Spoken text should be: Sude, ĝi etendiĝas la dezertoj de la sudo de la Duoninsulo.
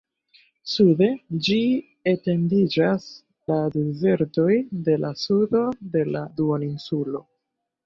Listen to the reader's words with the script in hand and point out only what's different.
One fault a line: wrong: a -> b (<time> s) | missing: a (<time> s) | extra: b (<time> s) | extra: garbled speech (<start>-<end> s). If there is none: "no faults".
no faults